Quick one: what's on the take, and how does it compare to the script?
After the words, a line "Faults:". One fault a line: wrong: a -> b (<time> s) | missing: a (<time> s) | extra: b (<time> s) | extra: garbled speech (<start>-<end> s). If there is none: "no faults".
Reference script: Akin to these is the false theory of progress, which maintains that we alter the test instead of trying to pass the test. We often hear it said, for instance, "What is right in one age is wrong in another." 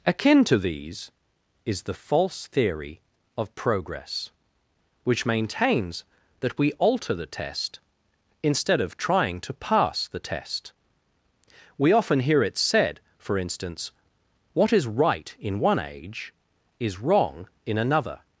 Akin to these is the false theory of progress, which maintains that we alter the test instead of trying to pass the test. We often hear it said, for instance, "What is right in one age is wrong in another."
Faults:
no faults